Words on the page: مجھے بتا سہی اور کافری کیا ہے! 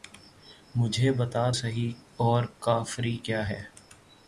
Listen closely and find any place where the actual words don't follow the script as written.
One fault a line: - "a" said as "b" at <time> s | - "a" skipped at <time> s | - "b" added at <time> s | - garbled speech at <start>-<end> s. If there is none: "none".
none